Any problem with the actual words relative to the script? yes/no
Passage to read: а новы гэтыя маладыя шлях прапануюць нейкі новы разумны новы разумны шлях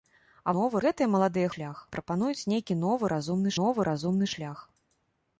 no